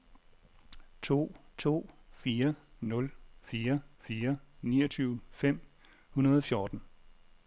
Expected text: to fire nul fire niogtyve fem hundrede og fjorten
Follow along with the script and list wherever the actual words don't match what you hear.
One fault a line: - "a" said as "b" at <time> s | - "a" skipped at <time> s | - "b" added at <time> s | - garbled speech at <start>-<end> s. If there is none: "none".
- "to" added at 1.6 s
- "fire" added at 4.0 s